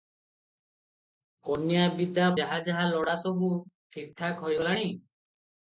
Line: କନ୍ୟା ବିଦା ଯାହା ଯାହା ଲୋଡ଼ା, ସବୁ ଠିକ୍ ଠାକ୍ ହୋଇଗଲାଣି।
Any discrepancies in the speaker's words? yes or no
no